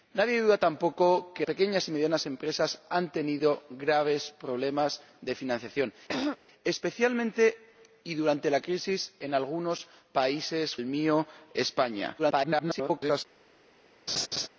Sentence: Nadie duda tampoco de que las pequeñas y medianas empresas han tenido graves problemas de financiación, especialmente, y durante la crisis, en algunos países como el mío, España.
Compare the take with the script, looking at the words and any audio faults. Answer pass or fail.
fail